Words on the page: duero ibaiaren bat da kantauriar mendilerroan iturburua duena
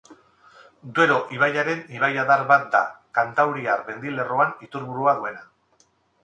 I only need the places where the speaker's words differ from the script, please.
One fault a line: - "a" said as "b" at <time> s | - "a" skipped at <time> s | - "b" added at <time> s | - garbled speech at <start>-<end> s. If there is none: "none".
- "ibaiadar" added at 2.0 s